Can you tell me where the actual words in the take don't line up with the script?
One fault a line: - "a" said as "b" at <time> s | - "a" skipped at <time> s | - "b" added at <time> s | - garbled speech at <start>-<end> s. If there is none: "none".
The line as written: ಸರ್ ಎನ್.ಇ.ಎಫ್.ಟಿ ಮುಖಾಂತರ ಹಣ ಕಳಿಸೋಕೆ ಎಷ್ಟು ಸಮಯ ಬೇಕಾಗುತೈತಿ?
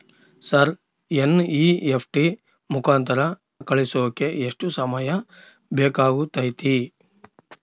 - "ಹಣ" skipped at 3.2 s